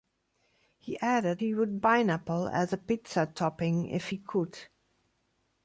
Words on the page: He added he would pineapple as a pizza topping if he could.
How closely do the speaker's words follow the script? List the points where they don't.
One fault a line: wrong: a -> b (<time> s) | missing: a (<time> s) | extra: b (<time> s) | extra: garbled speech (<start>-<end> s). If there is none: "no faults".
no faults